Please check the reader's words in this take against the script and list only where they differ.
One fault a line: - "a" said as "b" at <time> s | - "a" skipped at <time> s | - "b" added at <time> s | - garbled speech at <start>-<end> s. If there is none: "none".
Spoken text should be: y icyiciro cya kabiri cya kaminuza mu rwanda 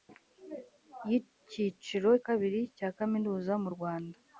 - "cya" skipped at 2.1 s